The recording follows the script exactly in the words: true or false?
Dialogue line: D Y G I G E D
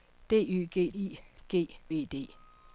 true